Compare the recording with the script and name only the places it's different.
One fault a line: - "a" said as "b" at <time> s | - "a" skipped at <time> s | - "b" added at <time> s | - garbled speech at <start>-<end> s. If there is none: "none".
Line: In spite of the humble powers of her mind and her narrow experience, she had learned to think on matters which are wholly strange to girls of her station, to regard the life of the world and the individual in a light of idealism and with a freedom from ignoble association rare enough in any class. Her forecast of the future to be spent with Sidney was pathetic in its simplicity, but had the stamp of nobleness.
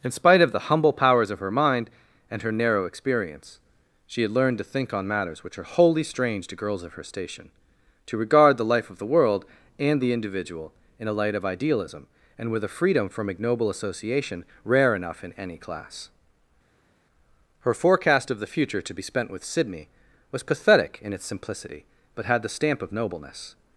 none